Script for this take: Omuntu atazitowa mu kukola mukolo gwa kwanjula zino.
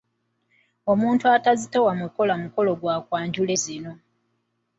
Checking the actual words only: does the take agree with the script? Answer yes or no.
yes